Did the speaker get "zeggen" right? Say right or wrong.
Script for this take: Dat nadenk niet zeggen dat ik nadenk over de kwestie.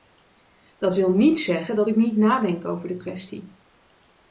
right